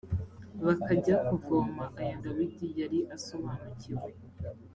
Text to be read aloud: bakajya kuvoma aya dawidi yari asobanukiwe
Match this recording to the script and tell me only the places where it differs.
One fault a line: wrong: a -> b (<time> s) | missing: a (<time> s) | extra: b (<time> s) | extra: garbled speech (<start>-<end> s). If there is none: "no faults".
no faults